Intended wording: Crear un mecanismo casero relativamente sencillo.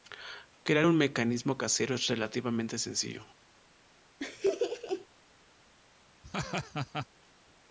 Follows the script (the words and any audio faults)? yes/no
no